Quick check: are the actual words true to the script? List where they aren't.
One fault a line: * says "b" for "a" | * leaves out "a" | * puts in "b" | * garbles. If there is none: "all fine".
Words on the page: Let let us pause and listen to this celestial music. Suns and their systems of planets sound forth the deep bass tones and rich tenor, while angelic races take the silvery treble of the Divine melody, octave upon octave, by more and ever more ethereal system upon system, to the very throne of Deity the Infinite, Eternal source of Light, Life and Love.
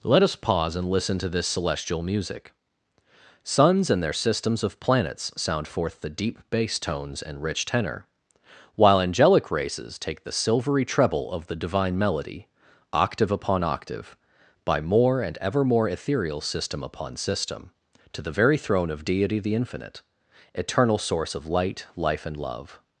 * leaves out "let"